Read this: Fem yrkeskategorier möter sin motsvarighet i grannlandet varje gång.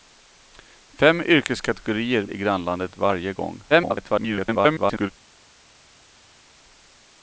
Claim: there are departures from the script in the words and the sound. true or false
true